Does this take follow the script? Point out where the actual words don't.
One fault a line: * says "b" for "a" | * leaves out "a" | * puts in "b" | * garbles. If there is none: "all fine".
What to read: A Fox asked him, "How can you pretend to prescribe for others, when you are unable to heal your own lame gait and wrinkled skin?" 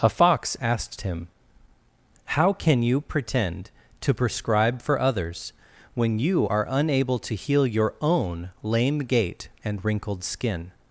all fine